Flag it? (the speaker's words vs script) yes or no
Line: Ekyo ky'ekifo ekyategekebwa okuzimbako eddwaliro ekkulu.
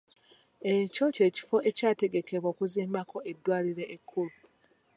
no